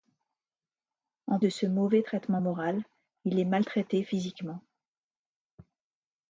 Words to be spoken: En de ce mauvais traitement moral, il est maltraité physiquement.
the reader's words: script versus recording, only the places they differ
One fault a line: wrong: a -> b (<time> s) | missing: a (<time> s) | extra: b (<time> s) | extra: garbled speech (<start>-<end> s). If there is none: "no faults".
no faults